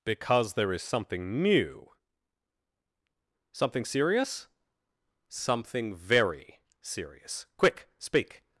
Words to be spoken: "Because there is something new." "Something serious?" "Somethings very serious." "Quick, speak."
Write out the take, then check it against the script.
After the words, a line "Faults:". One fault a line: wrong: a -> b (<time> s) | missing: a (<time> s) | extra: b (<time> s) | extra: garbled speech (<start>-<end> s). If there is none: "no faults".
"Because there is something new." "Something serious?" "Something very serious." "Quick, speak."
Faults:
wrong: Somethings -> Something (5.3 s)